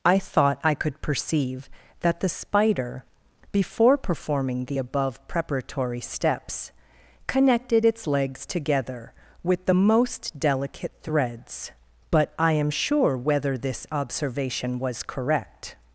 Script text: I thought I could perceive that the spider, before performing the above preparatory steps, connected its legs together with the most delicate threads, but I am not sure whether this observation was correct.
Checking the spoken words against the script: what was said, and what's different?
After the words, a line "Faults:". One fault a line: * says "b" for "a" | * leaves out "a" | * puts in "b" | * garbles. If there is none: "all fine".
I thought I could perceive that the spider, before performing the above preparatory steps, connected its legs together with the most delicate threads, but I am sure whether this observation was correct.
Faults:
* leaves out "not"